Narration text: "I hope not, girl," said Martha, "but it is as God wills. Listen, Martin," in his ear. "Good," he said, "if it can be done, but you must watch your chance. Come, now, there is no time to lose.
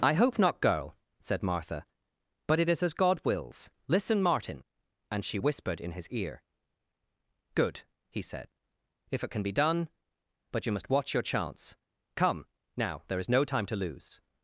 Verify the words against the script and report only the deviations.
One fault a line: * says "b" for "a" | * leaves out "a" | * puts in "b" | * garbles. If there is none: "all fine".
* puts in "and she whispered"